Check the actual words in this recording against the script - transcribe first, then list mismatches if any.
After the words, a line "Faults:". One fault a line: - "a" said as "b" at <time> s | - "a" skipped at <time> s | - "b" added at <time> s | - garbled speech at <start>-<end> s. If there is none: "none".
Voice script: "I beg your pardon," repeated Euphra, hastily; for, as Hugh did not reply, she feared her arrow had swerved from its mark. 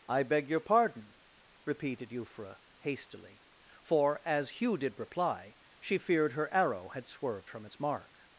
"I beg your pardon," repeated Euphra, hastily; for, as Hugh did reply, she feared her arrow had swerved from its mark.
Faults:
- "not" skipped at 5.0 s